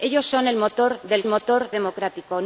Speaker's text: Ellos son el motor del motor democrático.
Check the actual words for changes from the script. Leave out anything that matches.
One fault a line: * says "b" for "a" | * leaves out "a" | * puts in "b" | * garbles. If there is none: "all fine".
all fine